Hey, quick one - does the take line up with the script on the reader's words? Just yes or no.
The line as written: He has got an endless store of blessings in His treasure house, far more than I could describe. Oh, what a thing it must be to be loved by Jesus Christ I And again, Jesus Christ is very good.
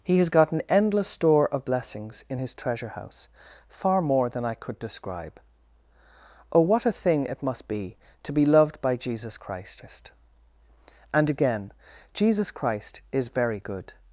no